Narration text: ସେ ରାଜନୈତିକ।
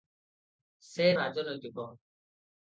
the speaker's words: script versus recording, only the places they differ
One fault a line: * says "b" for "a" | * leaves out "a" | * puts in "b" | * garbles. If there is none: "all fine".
all fine